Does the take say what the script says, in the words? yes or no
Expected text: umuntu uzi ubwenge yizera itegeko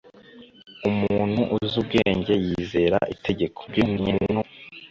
no